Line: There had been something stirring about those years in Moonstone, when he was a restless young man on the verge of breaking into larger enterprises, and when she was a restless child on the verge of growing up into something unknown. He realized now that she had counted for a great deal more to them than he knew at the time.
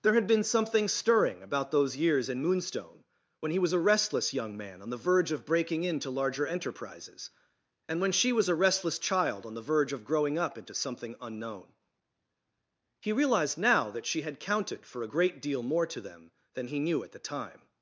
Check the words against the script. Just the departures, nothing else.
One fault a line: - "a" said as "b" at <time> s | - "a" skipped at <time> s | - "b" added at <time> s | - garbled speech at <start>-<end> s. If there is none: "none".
none